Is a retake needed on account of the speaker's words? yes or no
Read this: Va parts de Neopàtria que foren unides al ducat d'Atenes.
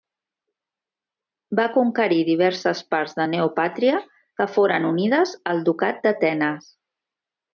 yes